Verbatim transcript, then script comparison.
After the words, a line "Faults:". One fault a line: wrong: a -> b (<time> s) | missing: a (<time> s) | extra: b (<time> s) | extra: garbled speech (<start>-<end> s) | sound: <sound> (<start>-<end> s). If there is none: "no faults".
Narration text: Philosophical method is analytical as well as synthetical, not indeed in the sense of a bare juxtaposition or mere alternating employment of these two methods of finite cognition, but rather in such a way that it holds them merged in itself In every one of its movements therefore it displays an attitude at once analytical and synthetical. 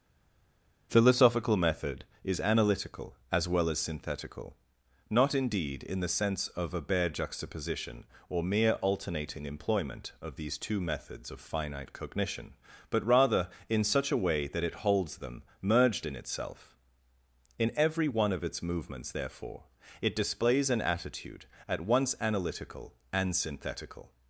Philosophical method is analytical as well as synthetical, not indeed in the sense of a bare juxtaposition or mere alternating employment of these two methods of finite cognition, but rather in such a way that it holds them merged in itself In every one of its movements therefore it displays an attitude at once analytical and synthetical.
Faults:
no faults